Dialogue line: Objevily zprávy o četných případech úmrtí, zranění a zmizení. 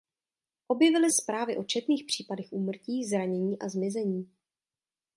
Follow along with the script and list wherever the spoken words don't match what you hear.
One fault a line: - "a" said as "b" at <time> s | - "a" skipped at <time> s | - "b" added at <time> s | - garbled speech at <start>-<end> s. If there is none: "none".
none